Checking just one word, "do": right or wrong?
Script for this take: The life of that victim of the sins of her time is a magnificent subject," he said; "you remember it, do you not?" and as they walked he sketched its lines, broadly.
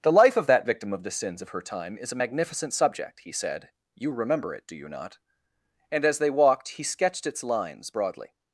right